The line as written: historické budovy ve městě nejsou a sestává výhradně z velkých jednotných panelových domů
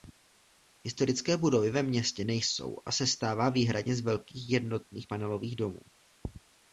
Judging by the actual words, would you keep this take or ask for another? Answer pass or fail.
pass